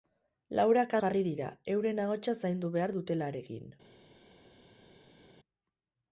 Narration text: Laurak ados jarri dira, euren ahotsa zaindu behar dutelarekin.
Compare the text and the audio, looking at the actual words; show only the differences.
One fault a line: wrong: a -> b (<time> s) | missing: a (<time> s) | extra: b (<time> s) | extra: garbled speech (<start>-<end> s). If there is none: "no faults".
missing: ados (0.9 s)